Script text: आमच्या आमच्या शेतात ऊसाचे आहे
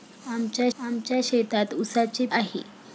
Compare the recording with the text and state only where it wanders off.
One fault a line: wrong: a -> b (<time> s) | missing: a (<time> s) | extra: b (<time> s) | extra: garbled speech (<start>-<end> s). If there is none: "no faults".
no faults